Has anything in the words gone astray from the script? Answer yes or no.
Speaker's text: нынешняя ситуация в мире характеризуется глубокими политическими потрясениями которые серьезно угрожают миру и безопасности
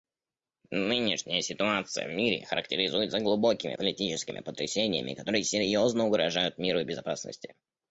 no